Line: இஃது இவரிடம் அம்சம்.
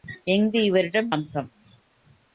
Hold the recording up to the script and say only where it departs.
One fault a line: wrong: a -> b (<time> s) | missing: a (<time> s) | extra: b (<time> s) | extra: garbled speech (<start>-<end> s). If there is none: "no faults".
no faults